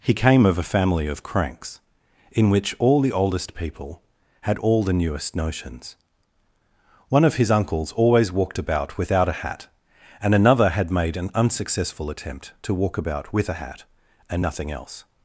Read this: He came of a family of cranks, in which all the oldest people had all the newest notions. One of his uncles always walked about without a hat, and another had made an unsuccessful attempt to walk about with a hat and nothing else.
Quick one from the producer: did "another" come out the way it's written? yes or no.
yes